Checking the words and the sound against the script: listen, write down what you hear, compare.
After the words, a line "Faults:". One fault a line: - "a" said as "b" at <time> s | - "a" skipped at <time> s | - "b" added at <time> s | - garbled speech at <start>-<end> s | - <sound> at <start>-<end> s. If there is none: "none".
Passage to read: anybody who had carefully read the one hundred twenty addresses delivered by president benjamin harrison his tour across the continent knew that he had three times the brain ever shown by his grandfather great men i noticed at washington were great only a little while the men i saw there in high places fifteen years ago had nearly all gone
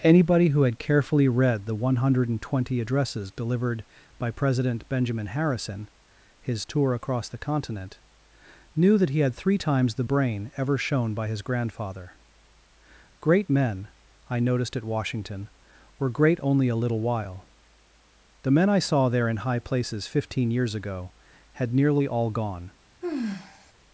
anybody who had carefully read the one hundred twenty addresses delivered by president benjamin harrison his tour across the continent knew that he had three times the brain ever shown by his grandfather great men i noticed at washington were great only a little while the men i saw there in high places fifteen years ago had nearly all gone
Faults:
- sigh at 23.0-23.7 s